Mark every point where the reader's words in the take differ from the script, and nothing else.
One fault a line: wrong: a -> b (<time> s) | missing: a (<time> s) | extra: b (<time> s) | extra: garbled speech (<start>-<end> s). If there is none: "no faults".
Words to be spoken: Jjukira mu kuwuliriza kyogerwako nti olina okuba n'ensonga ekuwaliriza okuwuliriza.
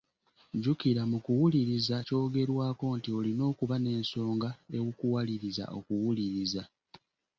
no faults